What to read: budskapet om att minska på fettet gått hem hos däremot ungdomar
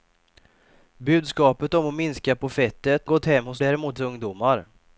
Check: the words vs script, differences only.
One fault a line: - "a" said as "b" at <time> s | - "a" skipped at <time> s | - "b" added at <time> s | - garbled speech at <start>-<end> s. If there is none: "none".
none